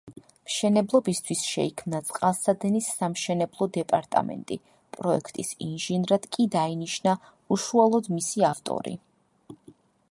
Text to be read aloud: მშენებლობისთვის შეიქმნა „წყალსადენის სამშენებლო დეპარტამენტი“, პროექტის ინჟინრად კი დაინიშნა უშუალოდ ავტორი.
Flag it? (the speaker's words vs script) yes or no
yes